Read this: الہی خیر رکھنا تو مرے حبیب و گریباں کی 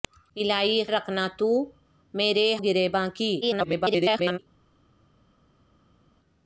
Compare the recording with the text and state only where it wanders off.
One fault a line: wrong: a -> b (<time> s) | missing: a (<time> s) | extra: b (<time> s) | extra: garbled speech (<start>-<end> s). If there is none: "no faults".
missing: خیر (0.8 s)
missing: حبیب و (2.5 s)
extra: garbled speech (3.4-4.4 s)